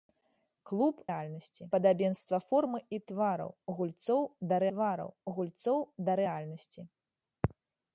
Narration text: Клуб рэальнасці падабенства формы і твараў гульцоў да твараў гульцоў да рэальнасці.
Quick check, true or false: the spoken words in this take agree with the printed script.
true